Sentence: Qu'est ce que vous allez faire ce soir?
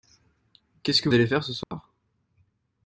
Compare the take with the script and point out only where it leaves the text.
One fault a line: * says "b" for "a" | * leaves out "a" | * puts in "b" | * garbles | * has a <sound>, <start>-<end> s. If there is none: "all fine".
* leaves out "vous"
* has a dropout, 1.6-1.7 s